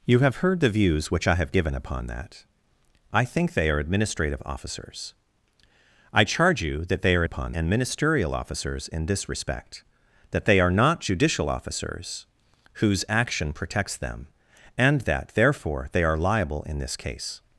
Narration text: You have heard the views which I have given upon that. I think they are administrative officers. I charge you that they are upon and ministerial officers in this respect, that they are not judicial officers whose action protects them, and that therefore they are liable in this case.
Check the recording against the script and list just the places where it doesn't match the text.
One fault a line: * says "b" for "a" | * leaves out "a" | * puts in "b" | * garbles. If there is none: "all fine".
all fine